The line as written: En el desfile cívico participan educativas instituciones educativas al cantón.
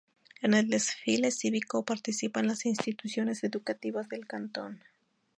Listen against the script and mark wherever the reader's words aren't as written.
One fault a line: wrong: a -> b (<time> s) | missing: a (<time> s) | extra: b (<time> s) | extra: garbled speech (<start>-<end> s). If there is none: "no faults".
wrong: educativas -> las (2.5 s)
wrong: al -> del (4.1 s)